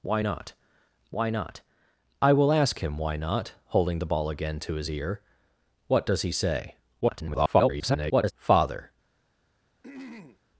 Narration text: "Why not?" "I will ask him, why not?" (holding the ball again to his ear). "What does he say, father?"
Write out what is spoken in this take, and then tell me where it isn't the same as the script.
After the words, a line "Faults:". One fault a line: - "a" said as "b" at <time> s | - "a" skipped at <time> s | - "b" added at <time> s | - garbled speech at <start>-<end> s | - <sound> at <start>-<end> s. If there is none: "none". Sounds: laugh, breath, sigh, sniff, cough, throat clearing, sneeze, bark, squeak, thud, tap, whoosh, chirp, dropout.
"Why not why not?" "I will ask him, why not?" (holding the ball again to his ear). "What does he say, [garbled] father?"
Faults:
- "why not" added at 1.1 s
- garbled speech at 7.0-8.3 s
- throat clearing at 9.8-10.4 s